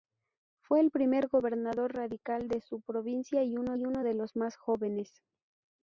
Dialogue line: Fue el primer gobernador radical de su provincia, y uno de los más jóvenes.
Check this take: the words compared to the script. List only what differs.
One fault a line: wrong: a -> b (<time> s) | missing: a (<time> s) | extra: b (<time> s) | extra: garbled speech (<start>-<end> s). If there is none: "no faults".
extra: y uno (3.7 s)